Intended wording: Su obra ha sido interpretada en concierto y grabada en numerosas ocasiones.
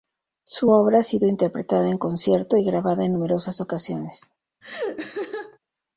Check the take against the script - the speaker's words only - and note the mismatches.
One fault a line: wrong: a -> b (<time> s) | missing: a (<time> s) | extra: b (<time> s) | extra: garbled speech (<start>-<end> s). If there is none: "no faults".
no faults